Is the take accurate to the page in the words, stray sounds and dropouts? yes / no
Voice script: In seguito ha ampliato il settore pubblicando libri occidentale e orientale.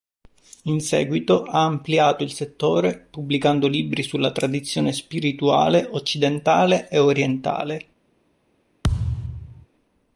no